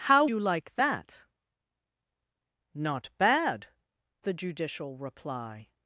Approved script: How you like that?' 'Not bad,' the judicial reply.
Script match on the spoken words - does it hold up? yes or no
yes